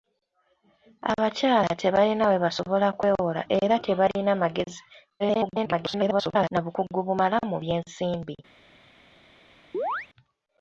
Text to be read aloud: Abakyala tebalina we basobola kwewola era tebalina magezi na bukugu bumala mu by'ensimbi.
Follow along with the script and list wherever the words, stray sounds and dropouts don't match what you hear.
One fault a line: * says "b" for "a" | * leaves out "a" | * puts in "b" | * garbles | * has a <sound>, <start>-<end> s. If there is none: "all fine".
* garbles
* has a chirp, 9.7-10.1 s